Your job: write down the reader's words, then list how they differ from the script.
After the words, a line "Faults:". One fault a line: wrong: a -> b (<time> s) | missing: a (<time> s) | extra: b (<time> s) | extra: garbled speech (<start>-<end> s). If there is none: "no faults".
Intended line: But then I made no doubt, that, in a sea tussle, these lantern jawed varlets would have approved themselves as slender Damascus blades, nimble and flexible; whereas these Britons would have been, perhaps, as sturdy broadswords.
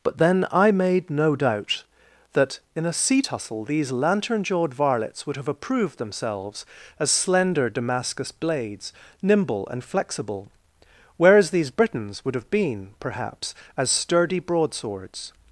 But then I made no doubt, that, in a sea tussle, these lantern jawed varlets would have approved themselves as slender Damascus blades, nimble and flexible; whereas these Britons would have been, perhaps, as sturdy broadswords.
Faults:
no faults